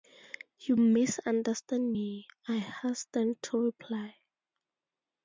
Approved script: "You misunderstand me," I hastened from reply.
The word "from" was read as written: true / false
false